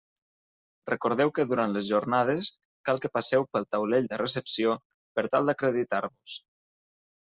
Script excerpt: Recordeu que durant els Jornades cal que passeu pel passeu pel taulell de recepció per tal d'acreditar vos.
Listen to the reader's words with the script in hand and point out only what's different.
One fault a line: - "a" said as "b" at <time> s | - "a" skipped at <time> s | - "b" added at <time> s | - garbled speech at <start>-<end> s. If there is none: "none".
- "els" said as "les" at 1.8 s
- "passeu pel" skipped at 3.7 s